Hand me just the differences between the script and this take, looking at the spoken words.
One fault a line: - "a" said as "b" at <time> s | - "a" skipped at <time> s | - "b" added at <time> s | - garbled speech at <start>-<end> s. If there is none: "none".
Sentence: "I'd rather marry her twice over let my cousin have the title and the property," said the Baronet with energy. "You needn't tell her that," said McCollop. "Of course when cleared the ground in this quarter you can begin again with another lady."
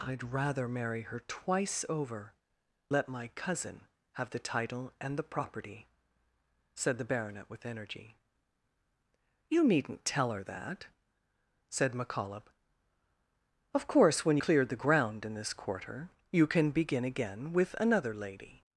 none